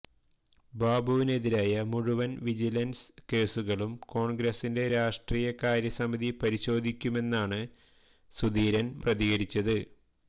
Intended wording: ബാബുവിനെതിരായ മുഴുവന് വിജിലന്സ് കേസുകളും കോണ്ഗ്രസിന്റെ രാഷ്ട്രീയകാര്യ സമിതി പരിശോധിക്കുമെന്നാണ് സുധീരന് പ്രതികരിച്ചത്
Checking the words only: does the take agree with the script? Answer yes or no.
yes